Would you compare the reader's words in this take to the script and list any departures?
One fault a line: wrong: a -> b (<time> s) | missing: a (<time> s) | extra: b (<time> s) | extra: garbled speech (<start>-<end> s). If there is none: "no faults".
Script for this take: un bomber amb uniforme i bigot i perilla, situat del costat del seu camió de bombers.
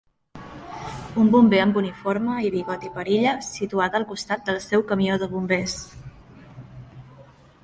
wrong: del -> al (4.0 s)